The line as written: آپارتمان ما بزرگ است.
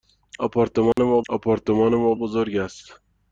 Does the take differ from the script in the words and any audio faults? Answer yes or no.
yes